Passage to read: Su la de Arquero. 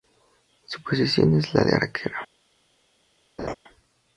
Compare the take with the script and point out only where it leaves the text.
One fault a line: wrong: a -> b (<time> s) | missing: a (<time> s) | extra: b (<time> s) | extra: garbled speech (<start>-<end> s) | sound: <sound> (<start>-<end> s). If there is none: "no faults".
extra: posición es (0.8 s)
sound: laugh (3.4-3.5 s)